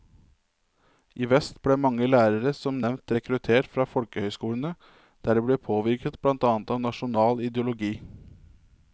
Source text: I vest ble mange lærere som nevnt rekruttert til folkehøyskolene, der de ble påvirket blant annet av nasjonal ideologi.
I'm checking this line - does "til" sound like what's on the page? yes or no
no